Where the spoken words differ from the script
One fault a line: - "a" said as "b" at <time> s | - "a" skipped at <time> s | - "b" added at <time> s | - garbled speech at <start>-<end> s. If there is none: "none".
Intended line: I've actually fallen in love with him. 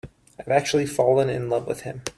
none